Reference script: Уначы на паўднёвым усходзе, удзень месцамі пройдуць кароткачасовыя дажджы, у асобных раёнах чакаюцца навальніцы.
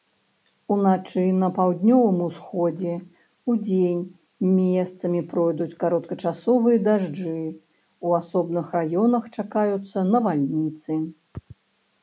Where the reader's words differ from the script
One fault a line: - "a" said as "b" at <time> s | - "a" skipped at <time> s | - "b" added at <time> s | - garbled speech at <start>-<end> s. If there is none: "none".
none